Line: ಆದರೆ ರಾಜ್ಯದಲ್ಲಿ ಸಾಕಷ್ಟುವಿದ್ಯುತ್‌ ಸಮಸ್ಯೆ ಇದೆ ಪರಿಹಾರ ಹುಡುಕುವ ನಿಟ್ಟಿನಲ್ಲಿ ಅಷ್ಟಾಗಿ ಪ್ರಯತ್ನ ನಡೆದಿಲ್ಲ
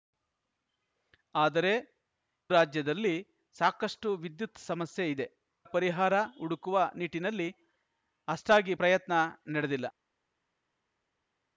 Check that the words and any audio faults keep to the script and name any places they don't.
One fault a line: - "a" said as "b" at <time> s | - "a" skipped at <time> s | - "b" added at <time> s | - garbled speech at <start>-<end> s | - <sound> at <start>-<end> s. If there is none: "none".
none